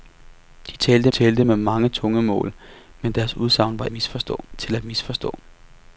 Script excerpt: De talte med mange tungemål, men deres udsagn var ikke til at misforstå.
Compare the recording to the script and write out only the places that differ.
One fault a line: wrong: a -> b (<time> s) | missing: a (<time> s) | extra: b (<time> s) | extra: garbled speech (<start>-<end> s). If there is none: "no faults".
extra: talte (1.1 s)
wrong: ikke -> misforstå (3.9 s)